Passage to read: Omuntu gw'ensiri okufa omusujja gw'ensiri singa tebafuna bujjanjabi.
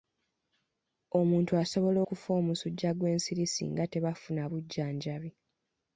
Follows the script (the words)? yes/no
no